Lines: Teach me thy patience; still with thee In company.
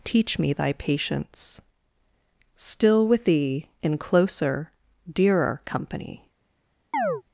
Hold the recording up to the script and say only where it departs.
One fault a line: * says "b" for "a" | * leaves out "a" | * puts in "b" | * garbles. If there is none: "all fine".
* puts in "closer dearer"